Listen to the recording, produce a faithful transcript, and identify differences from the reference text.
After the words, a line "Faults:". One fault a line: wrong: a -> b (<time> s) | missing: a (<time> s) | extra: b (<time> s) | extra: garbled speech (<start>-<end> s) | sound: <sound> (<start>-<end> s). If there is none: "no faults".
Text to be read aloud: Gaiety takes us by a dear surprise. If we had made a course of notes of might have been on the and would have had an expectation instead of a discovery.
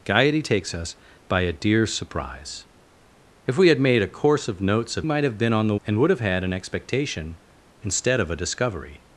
Gaiety takes us by a dear surprise. If we had made a course of notes of might have been on the and would have had an expectation instead of a discovery.
Faults:
no faults